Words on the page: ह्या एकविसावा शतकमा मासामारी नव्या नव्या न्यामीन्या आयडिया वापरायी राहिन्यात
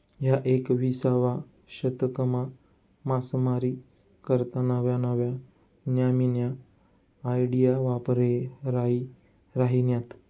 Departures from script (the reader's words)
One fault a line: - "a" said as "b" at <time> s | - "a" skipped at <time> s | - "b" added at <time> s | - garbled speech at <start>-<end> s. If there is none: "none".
- "करता" added at 4.2 s